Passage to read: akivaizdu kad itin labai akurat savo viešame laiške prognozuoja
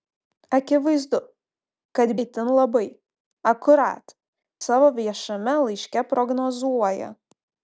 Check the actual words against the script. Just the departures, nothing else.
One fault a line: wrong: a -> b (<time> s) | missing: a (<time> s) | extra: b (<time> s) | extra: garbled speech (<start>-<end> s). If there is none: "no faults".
no faults